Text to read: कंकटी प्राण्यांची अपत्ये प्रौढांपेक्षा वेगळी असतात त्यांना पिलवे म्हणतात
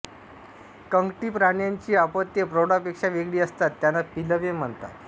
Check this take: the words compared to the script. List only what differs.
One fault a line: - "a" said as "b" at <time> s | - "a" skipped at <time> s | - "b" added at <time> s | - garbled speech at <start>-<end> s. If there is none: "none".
none